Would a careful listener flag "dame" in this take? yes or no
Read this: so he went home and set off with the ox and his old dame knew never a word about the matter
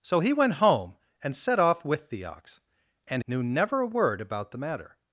yes